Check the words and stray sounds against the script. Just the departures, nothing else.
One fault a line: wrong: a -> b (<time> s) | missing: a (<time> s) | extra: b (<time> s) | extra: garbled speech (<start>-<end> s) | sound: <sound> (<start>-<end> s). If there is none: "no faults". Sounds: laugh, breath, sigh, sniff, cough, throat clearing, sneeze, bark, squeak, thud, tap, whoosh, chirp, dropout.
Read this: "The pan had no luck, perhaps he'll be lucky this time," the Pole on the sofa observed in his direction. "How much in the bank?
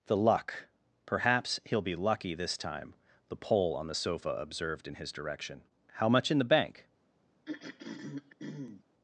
missing: pan had no (0.2 s)
sound: throat clearing (7.5-8.8 s)